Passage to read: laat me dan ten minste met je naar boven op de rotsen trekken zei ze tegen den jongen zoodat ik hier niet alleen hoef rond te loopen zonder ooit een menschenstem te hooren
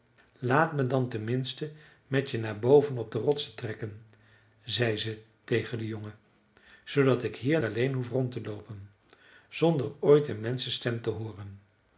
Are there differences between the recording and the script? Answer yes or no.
yes